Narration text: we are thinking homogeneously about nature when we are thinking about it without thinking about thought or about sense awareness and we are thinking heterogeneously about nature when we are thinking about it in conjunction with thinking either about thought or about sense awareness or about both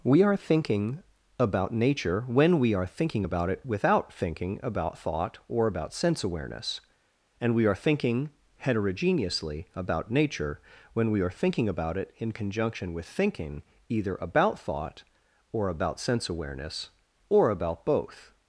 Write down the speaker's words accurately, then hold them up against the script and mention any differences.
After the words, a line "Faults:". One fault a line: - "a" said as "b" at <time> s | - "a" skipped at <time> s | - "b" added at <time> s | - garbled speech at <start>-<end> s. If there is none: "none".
we are thinking about nature when we are thinking about it without thinking about thought or about sense awareness and we are thinking heterogeneously about nature when we are thinking about it in conjunction with thinking either about thought or about sense awareness or about both
Faults:
- "homogeneously" skipped at 1.0 s